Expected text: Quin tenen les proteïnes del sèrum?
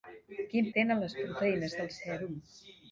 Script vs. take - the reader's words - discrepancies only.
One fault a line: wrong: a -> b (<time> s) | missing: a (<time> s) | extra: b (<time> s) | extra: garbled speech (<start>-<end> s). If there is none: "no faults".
no faults